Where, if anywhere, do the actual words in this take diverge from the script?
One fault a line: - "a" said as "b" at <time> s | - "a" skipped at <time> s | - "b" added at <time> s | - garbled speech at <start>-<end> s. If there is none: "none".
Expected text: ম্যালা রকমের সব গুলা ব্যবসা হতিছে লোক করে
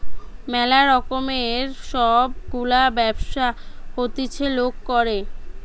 none